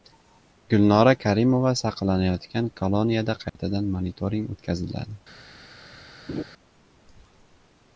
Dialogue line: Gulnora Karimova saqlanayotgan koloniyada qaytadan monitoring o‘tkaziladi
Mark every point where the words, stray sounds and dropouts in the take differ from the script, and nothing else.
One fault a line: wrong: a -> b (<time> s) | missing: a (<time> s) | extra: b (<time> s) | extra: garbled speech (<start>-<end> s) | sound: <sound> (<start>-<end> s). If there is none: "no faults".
sound: dropout (3.5-3.6 s)
sound: laugh (6.3-6.4 s)